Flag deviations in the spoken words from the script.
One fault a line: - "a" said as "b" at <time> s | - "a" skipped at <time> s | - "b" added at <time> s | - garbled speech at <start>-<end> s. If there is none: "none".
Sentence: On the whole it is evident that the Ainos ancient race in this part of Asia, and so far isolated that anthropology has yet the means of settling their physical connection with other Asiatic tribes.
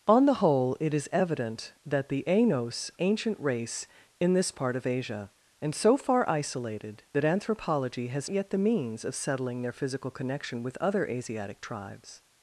none